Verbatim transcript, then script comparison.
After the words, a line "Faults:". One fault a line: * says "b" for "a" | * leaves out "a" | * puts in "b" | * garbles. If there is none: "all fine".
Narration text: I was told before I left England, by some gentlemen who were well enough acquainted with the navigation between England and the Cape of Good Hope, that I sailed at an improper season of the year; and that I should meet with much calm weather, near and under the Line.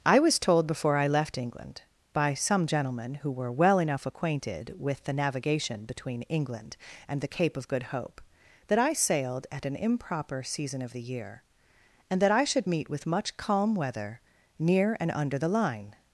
I was told before I left England, by some gentlemen who were well enough acquainted with the navigation between England and the Cape of Good Hope, that I sailed at an improper season of the year; and that I should meet with much calm weather, near and under the Line.
Faults:
all fine